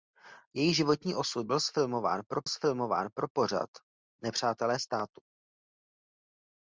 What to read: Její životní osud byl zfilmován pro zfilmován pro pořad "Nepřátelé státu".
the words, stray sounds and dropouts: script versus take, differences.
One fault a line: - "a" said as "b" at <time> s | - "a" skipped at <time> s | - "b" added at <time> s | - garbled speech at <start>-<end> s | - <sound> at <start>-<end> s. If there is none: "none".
none